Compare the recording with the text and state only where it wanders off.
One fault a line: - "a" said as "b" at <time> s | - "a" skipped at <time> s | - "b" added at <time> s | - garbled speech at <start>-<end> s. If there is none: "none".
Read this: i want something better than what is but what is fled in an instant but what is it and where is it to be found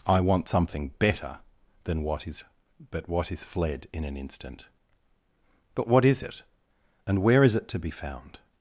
none